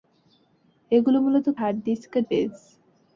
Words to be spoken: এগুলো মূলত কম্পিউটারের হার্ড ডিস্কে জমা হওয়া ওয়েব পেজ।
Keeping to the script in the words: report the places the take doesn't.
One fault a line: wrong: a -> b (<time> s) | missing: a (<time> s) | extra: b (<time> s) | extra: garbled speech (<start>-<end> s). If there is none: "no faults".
missing: কম্পিউটারের (1.5 s)
missing: জমা হওয়া ওয়েব (2.2 s)